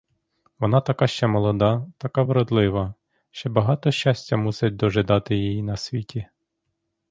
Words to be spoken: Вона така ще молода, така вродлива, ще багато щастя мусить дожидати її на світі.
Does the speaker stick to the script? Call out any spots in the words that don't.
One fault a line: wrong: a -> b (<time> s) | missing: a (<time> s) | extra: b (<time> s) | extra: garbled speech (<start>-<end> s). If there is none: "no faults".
no faults